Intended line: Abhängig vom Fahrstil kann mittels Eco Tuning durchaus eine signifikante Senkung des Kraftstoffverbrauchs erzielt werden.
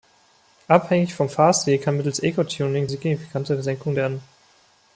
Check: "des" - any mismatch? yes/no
yes